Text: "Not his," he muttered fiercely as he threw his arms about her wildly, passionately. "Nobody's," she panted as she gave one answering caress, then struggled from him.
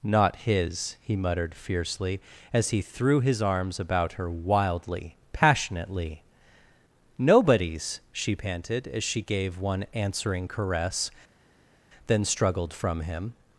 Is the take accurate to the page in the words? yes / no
yes